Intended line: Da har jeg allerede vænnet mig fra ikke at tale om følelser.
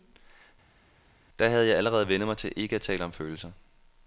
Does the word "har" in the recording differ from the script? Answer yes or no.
yes